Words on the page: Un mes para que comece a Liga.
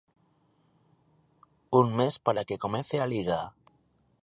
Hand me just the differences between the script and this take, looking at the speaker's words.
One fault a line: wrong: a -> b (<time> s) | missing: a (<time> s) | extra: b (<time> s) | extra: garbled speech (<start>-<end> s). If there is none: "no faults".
no faults